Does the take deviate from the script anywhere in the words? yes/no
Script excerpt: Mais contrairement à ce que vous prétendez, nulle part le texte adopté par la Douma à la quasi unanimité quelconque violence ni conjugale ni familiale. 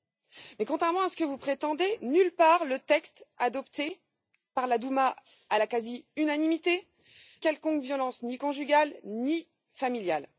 no